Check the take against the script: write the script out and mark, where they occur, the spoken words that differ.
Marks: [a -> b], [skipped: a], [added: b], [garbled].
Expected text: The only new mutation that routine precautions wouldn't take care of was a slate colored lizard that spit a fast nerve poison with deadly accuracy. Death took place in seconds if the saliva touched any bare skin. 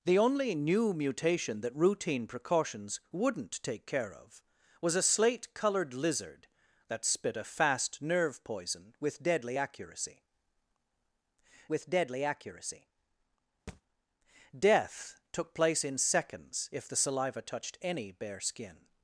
The only new mutation that routine precautions wouldn't take care of was a slate colored lizard that spit a fast nerve poison with deadly accuracy. [added: with deadly accuracy] Death took place in seconds if the saliva touched any bare skin.